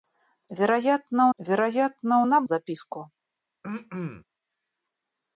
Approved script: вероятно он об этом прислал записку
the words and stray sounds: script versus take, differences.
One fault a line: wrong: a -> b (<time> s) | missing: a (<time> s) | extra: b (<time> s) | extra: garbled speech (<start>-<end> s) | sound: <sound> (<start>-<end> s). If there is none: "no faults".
extra: вероятно (1.4 s)
missing: этом прислал (2.5 s)
sound: throat clearing (3.6-4.2 s)